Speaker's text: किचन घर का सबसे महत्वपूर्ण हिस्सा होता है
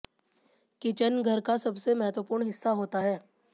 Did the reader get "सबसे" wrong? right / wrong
right